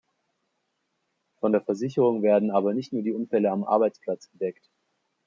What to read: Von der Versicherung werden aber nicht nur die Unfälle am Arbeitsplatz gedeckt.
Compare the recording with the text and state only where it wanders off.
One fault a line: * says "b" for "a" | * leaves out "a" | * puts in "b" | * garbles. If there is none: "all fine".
all fine